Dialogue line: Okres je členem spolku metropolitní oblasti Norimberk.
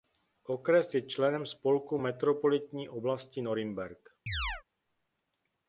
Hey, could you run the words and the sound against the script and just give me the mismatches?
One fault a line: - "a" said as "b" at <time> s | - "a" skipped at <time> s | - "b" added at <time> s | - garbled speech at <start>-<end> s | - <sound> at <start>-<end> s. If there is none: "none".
- chirp at 4.3-4.6 s